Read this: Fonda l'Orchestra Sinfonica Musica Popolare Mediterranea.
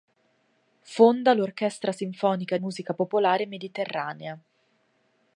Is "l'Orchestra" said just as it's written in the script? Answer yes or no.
yes